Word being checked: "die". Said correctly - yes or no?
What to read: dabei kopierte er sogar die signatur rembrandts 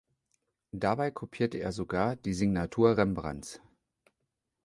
yes